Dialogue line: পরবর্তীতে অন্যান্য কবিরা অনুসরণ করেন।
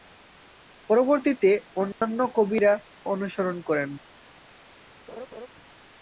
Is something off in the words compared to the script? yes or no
no